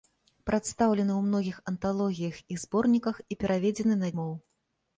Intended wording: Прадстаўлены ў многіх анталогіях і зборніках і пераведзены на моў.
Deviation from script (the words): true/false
false